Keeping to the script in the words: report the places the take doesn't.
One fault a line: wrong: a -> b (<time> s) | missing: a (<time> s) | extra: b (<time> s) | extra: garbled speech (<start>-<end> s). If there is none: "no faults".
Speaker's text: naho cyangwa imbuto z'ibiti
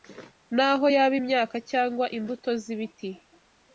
extra: yaba imyaka (0.9 s)